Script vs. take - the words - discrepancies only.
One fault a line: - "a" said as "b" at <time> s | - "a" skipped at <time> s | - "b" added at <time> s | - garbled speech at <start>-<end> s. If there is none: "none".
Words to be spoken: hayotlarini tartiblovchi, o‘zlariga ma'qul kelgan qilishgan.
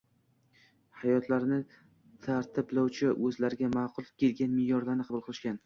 - "me'yorlarni qabul" added at 4.6 s